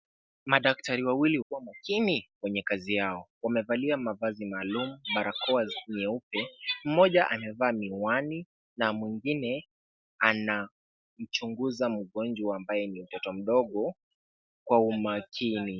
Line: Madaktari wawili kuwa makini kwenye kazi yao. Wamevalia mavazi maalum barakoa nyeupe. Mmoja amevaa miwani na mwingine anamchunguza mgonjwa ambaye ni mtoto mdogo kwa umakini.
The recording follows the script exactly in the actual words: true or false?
true